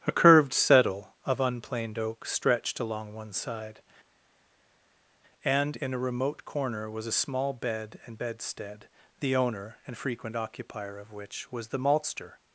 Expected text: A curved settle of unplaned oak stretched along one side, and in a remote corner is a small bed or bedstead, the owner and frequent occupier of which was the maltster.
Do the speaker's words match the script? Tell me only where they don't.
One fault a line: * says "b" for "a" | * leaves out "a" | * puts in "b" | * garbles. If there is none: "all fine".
* says "was" for "is"
* says "and" for "or"